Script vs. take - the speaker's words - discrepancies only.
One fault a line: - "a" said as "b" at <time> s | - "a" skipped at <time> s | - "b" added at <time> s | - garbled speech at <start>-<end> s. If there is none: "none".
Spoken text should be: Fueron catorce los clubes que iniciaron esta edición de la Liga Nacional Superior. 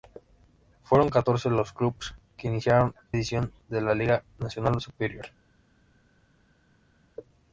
- "esta" skipped at 3.0 s